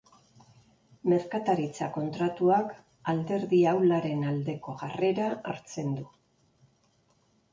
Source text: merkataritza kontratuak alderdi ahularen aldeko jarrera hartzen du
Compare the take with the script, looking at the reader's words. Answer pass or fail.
pass